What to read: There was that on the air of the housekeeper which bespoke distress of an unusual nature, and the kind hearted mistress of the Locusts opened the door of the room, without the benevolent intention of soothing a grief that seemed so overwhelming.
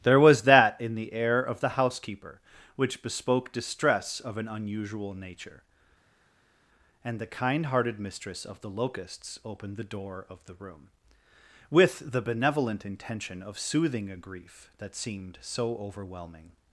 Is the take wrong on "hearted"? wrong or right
right